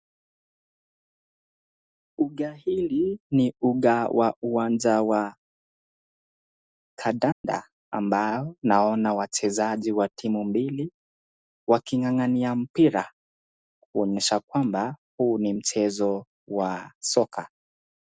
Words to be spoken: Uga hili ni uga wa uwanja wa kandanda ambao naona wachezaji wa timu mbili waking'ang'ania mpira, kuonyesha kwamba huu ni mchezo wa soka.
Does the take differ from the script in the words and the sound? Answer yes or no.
yes